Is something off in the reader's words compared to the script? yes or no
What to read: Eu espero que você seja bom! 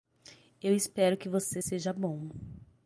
no